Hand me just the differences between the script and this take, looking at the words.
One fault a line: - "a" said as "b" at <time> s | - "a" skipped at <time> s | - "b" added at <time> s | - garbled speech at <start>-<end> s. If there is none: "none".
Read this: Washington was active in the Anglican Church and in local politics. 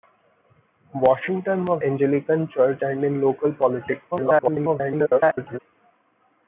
- "active in the" skipped at 1.8 s
- garbled speech at 4.1-5.6 s